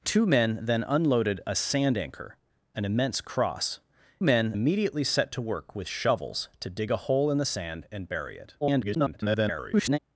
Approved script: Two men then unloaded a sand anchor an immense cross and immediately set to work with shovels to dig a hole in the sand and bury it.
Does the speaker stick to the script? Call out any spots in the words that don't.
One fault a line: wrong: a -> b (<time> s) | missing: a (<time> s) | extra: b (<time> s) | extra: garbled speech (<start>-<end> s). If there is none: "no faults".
wrong: and -> men (4.2 s)
extra: garbled speech (8.6-10.0 s)